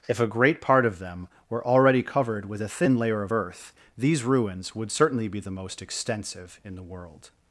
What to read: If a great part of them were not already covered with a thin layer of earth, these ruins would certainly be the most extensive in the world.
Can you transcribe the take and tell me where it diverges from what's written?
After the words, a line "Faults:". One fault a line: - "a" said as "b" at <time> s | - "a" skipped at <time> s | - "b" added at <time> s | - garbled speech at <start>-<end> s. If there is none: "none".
If a great part of them were already covered with a thin layer of earth, these ruins would certainly be the most extensive in the world.
Faults:
- "not" skipped at 1.6 s